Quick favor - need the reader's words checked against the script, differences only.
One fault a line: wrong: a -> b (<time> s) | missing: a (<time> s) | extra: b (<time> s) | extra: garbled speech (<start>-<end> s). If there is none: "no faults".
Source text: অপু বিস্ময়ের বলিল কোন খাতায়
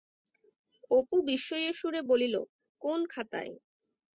extra: সুরে (1.7 s)